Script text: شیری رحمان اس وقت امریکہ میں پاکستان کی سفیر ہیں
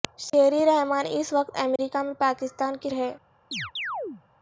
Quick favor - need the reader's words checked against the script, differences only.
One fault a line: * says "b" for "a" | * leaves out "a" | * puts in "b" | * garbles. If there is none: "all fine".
* leaves out "سفیر"